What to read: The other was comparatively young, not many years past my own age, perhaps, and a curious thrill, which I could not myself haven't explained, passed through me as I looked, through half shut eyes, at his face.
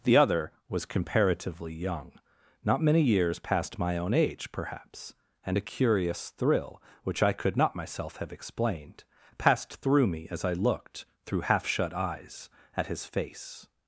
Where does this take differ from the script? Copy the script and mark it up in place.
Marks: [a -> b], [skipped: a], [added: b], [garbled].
The other was comparatively young, not many years past my own age, perhaps, and a curious thrill, which I could not myself [haven't -> have] explained, passed through me as I looked, through half shut eyes, at his face.